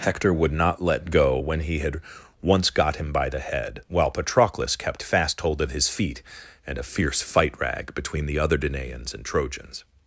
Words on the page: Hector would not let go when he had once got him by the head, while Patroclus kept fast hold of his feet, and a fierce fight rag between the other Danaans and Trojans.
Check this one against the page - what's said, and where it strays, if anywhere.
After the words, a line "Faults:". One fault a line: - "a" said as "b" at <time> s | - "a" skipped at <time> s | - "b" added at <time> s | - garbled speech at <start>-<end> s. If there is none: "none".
Hector would not let go when he had once got him by the head, while Patroclus kept fast hold of his feet, and a fierce fight rag between the other Danaans and Trojans.
Faults:
none